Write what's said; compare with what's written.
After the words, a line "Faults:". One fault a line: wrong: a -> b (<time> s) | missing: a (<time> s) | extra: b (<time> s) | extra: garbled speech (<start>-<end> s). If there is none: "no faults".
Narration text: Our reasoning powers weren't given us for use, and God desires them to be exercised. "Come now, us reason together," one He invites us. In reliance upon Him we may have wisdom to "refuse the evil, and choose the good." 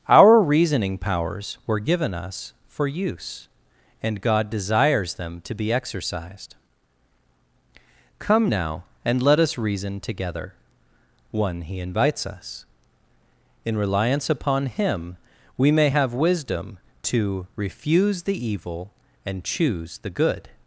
Our reasoning powers were given us for use, and God desires them to be exercised. "Come now, and let us reason together," one He invites us. In reliance upon Him we may have wisdom to "refuse the evil, and choose the good."
Faults:
wrong: weren't -> were (1.7 s)
extra: and let (9.0 s)